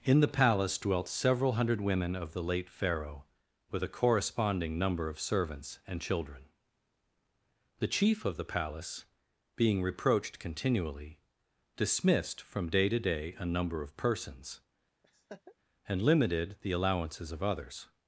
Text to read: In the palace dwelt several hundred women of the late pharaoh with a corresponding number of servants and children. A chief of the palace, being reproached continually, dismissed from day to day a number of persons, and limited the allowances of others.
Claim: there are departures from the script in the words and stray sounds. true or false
true